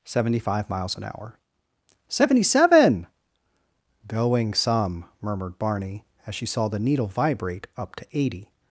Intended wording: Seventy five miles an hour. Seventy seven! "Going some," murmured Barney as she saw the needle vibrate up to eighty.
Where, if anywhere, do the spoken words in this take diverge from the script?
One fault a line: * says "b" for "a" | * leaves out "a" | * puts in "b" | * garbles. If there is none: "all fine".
all fine